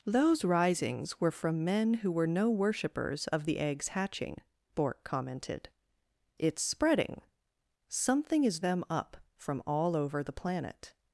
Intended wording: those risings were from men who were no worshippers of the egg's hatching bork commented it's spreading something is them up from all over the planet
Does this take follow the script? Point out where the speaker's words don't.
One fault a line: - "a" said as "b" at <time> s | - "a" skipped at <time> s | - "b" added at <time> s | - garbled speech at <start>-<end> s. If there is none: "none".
none